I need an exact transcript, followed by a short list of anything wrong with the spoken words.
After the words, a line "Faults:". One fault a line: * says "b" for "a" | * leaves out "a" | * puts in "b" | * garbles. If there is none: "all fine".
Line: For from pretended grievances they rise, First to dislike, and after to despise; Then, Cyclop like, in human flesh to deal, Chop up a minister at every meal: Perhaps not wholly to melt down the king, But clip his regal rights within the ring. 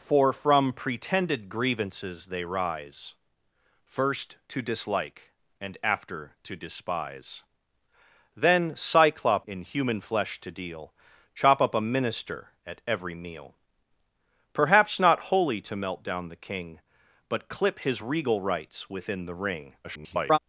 For from pretended grievances they rise, First to dislike, and after to despise; Then, Cyclop in human flesh to deal, Chop up a minister at every meal: Perhaps not wholly to melt down the king, But clip his regal rights within the ring. [garbled]
Faults:
* leaves out "like"
* garbles